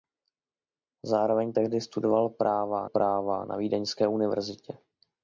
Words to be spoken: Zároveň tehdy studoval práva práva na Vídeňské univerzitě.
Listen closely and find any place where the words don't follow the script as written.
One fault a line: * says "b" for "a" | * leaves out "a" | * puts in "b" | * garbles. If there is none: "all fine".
all fine